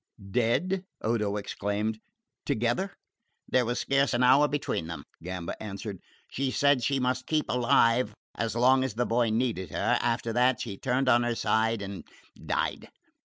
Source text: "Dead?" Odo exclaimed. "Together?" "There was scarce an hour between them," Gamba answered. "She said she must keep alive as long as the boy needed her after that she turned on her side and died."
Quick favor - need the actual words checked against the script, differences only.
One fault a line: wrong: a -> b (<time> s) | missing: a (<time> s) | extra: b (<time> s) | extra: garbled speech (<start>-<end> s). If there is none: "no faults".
no faults